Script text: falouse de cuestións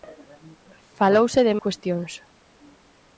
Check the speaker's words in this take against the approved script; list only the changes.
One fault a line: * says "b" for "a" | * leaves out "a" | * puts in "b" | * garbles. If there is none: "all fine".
all fine